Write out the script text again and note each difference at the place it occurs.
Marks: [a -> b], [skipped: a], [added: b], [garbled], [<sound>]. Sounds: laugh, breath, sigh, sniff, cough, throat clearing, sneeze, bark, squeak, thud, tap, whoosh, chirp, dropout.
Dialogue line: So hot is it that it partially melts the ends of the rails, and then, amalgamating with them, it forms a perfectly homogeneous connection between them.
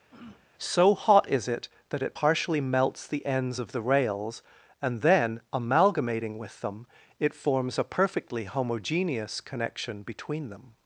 [throat clearing] So hot is it that it partially melts the ends of the rails, and then, amalgamating with them, it forms a perfectly homogeneous connection between them.